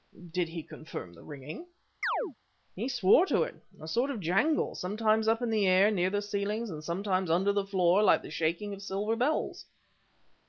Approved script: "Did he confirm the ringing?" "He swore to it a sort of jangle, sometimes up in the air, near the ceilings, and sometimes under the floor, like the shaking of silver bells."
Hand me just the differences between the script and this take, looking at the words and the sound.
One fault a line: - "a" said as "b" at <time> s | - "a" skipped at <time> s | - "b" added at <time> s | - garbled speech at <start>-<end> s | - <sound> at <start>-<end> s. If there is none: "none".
- chirp at 2.0-2.4 s